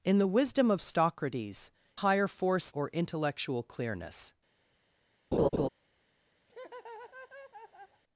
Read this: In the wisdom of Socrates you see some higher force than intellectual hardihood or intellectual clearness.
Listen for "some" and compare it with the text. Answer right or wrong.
wrong